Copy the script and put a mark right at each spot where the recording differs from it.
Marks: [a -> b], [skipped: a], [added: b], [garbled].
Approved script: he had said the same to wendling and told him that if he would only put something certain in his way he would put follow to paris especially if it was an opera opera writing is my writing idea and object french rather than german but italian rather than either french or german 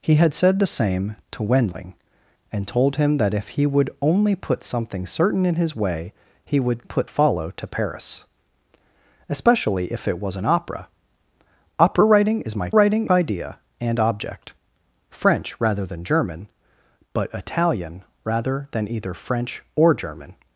he had said the same to wendling and told him that if he would only put something certain in his way he would put follow to paris especially if it was an opera opera writing is my writing idea and object french rather than german but italian rather than either french or german